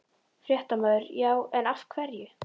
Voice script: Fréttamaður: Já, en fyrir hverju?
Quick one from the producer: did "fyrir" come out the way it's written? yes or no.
no